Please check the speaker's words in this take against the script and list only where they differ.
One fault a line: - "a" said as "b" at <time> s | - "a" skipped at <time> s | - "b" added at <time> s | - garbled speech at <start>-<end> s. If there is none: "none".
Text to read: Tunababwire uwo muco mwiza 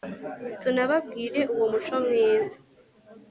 none